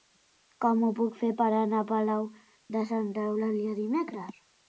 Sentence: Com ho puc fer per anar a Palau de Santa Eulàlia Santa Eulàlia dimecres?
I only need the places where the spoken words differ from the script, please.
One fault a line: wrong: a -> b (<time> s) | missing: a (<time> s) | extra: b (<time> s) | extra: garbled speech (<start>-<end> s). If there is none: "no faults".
missing: Santa Eulàlia (3.8 s)